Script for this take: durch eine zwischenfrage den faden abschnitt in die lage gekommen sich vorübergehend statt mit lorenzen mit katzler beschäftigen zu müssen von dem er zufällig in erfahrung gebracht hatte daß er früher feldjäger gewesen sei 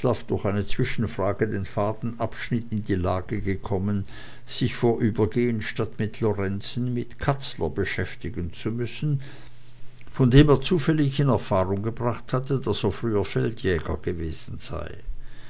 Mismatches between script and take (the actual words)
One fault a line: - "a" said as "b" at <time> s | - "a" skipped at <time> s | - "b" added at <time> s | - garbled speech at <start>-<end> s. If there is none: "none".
none